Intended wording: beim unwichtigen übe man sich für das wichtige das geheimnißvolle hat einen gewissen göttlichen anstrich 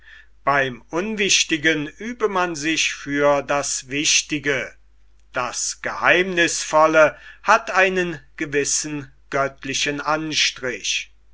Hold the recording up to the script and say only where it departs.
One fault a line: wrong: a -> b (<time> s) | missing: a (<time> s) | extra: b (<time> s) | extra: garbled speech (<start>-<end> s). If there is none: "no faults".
no faults